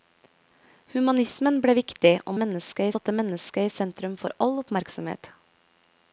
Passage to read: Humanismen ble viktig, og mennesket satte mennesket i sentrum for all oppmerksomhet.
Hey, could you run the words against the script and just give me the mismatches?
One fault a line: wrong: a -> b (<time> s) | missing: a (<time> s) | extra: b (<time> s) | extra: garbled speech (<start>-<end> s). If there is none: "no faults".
no faults